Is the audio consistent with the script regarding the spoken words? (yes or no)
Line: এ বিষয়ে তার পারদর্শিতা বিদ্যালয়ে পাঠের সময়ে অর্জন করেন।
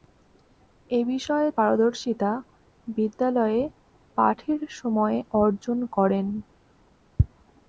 no